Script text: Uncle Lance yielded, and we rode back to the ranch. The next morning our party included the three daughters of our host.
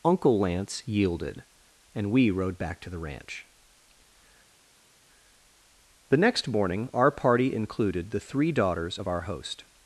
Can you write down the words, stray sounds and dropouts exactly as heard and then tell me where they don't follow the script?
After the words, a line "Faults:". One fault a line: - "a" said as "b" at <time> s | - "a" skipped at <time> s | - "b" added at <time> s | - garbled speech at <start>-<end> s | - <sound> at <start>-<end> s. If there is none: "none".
Uncle Lance yielded, and we rode back to the ranch. The next morning our party included the three daughters of our host.
Faults:
none